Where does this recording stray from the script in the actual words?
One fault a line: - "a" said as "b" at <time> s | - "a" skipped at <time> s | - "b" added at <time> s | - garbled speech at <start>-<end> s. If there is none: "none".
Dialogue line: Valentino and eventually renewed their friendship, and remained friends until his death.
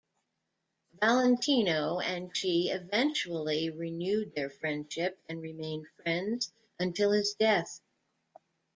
- "she" added at 2.4 s